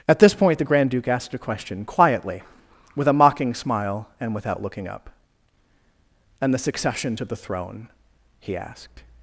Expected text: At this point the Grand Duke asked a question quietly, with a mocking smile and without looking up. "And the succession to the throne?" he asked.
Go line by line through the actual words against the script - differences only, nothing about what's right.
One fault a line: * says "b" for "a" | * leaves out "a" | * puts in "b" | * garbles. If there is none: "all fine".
all fine